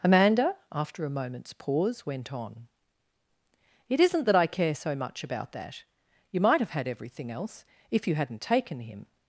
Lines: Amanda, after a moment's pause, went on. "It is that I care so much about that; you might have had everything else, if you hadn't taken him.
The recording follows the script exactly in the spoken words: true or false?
false